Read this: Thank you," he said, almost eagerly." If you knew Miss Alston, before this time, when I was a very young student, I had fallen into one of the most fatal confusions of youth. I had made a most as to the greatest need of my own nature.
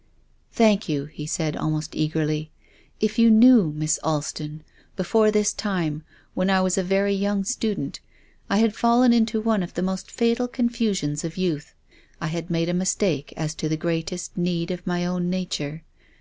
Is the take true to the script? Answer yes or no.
no